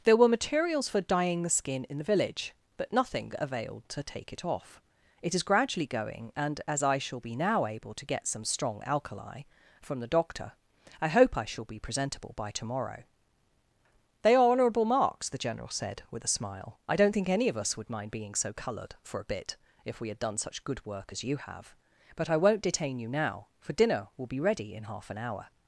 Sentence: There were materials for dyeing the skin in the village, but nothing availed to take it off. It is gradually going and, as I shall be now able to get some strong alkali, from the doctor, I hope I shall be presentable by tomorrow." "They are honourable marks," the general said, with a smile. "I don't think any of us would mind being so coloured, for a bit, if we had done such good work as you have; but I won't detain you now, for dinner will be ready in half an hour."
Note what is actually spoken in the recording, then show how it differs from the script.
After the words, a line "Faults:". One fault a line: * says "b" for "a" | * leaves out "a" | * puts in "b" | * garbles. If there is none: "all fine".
There were materials for dyeing the skin in the village, but nothing availed to take it off. It is gradually going and, as I shall be now able to get some strong alkali, from the doctor, I hope I shall be presentable by tomorrow." "They are honourable marks," the general said, with a smile. "I don't think any of us would mind being so coloured, for a bit, if we had done such good work as you have; but I won't detain you now, for dinner will be ready in half an hour."
Faults:
all fine